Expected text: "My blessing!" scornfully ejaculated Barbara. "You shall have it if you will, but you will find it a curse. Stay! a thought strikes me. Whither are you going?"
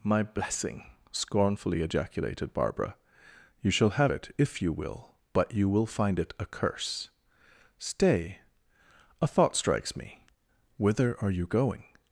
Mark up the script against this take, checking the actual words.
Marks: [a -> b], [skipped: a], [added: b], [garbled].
"My blessing!" scornfully ejaculated Barbara. "You shall have it if you will, but you will find it a curse. Stay! a thought strikes me. Whither are you going?"